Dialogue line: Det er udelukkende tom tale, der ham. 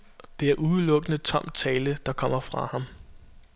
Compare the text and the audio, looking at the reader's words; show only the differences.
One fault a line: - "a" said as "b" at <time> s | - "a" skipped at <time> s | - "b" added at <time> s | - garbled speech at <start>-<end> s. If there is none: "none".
- "kommer fra" added at 2.1 s